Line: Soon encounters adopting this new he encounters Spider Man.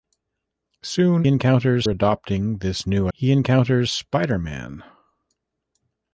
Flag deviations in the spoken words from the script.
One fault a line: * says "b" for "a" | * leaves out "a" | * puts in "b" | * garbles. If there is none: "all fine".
all fine